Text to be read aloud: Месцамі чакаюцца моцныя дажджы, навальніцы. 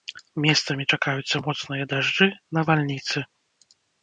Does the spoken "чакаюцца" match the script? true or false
true